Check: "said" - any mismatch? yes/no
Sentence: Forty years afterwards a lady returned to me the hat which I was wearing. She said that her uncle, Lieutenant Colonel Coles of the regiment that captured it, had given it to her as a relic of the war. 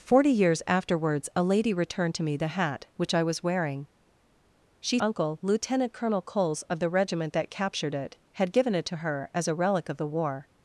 yes